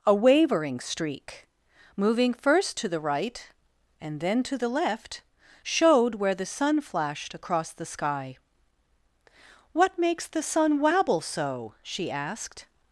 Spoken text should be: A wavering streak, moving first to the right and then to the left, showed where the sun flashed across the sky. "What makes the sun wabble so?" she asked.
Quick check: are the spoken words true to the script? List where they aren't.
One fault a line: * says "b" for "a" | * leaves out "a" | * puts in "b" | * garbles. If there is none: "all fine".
all fine